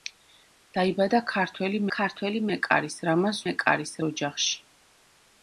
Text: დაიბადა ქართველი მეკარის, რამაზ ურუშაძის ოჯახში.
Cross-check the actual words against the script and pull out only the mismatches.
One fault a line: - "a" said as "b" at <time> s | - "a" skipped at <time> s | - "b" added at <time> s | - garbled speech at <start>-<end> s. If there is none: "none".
- "ქართველი" added at 2.0 s
- "ურუშაძის" said as "მეკარის" at 3.5 s